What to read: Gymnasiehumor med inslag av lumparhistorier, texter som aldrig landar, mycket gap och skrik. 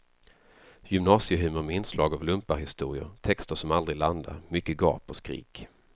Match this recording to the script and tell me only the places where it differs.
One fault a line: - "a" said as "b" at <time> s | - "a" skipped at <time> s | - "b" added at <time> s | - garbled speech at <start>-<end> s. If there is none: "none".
none